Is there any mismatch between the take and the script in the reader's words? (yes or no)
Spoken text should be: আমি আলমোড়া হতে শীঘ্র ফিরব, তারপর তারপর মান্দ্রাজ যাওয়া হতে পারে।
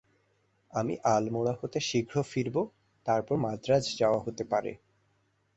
yes